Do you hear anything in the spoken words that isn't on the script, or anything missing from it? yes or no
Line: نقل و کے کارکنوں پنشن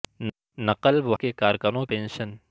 no